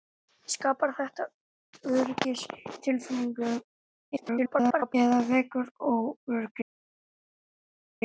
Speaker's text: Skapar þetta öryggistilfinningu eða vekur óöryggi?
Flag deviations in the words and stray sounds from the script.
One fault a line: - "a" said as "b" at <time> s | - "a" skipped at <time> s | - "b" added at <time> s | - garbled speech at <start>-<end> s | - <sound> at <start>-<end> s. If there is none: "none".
- garbled speech at 4.2-4.9 s